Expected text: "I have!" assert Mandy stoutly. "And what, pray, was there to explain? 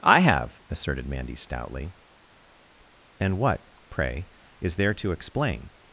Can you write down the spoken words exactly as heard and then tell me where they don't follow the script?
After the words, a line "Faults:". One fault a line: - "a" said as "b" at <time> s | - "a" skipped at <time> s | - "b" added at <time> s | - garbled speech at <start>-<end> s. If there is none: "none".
"I have!" asserted Mandy stoutly. "And what, pray, is there to explain?
Faults:
- "assert" said as "asserted" at 0.7 s
- "was" said as "is" at 4.6 s